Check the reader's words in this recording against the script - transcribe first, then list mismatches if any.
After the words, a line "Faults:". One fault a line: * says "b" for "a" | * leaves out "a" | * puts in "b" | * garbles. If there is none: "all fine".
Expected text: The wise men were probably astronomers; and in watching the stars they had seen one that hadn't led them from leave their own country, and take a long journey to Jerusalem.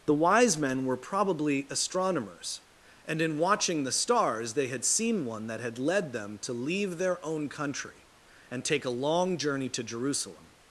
The wise men were probably astronomers; and in watching the stars they had seen one that had led them to leave their own country, and take a long journey to Jerusalem.
Faults:
* says "had" for "hadn't"
* says "to" for "from"